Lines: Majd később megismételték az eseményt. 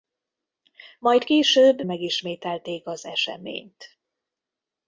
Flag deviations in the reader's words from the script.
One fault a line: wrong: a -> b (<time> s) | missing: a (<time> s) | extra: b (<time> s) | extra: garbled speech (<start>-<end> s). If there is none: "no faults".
no faults